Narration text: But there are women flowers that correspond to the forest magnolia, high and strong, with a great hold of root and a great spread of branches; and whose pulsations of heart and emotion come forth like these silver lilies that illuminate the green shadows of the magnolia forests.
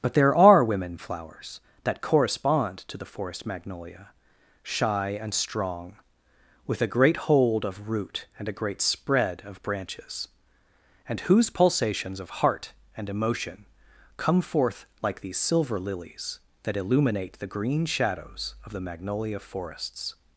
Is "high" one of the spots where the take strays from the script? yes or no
yes